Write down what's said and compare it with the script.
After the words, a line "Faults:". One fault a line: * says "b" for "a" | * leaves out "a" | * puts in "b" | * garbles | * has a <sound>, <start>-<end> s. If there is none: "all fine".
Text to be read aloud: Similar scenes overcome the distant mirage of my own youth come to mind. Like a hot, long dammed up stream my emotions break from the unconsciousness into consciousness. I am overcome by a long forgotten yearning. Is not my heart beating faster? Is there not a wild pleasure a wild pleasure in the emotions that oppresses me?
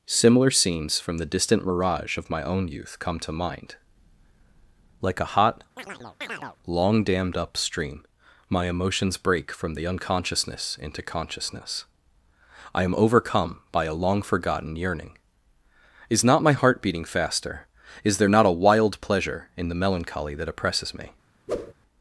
Similar scenes from the distant mirage of my own youth come to mind. Like a hot, long dammed up stream my emotions break from the unconsciousness into consciousness. I am overcome by a long forgotten yearning. Is not my heart beating faster? Is there not a wild pleasure in the melancholy that oppresses me?
Faults:
* says "from" for "overcome"
* has a chirp, 5.8-6.6 s
* leaves out "a wild pleasure"
* says "melancholy" for "emotions"
* has a whoosh, 21.5-21.7 s